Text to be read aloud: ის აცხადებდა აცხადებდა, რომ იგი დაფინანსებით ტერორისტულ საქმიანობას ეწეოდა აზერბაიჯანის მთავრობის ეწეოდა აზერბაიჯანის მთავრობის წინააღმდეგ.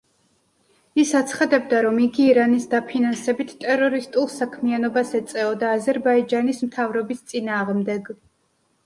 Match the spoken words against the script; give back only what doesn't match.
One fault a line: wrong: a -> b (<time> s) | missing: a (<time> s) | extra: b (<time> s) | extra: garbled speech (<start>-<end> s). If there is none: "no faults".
missing: აცხადებდა (1.8 s)
extra: ირანის (2.3 s)
missing: ეწეოდა აზერბაიჯანის მთავრობის (7.2 s)